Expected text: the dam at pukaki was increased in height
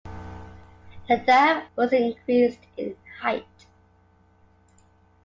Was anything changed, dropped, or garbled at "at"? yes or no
yes